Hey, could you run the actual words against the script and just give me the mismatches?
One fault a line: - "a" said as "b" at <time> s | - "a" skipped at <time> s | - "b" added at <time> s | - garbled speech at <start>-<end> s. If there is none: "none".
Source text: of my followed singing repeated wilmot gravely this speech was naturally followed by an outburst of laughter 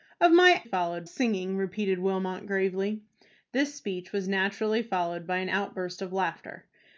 none